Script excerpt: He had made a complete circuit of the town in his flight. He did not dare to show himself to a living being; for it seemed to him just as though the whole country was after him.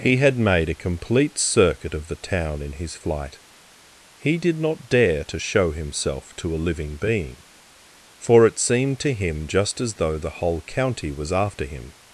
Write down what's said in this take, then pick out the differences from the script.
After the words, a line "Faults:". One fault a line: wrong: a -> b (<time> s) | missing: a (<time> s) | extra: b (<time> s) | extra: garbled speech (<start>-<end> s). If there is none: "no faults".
He had made a complete circuit of the town in his flight. He did not dare to show himself to a living being; for it seemed to him just as though the whole county was after him.
Faults:
wrong: country -> county (10.6 s)